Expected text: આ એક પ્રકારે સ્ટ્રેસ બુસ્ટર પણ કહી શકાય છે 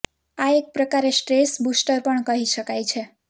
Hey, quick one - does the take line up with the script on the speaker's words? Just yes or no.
yes